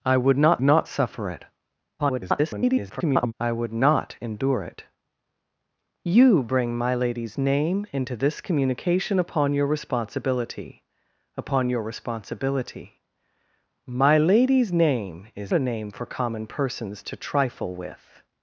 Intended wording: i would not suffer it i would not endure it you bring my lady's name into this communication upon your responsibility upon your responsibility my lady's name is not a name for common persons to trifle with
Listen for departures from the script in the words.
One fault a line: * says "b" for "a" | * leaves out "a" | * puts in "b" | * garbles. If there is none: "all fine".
* puts in "not"
* garbles
* leaves out "not"